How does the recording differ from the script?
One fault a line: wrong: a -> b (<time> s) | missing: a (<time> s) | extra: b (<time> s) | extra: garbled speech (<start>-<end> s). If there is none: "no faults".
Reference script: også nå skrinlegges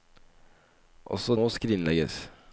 no faults